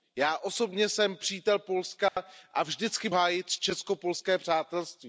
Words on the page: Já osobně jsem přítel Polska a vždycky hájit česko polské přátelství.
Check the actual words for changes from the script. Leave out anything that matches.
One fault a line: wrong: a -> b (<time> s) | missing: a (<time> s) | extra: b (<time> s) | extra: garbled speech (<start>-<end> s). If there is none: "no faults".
no faults